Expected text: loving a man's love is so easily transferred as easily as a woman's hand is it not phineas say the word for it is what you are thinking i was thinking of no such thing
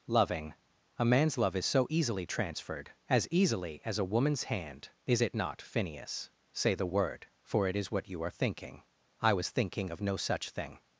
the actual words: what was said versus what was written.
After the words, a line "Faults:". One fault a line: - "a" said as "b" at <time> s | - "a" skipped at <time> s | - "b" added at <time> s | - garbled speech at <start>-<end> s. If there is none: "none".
loving a man's love is so easily transferred as easily as a woman's hand is it not phineas say the word for it is what you are thinking i was thinking of no such thing
Faults:
none